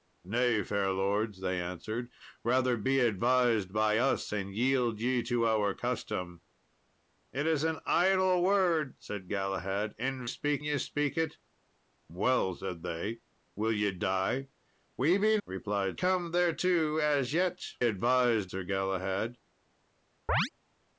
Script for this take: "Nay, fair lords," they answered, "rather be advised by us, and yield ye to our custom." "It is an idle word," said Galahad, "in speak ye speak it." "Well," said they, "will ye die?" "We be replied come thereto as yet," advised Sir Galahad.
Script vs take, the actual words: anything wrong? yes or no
no